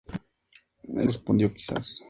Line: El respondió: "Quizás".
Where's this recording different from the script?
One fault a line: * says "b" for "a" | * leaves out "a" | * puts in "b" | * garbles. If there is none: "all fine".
all fine